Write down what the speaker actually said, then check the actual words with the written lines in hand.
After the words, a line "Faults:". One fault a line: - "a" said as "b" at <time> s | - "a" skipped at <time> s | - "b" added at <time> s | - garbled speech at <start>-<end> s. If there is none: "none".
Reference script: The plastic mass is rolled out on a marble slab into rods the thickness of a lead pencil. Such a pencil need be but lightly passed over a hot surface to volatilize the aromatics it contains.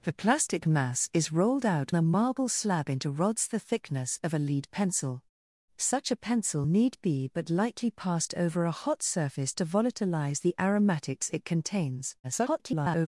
The plastic mass is rolled out a marble slab into rods the thickness of a lead pencil. Such a pencil need be but lightly passed over a hot surface to volatilize the aromatics it contains. [garbled]
Faults:
- "on" skipped at 1.9 s
- garbled speech at 12.2-13.1 s